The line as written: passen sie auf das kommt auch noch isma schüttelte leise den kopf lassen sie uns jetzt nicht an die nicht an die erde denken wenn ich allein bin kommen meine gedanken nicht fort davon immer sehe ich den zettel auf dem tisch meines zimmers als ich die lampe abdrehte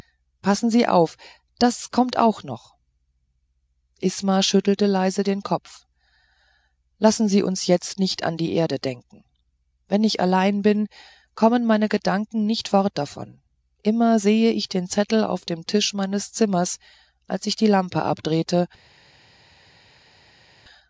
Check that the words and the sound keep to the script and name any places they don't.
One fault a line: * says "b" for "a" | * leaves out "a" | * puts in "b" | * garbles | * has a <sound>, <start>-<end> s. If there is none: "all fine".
* leaves out "nicht an die"